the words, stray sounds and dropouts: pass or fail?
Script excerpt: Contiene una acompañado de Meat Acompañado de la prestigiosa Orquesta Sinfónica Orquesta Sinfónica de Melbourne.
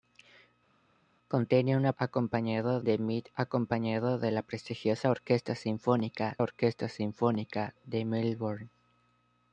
pass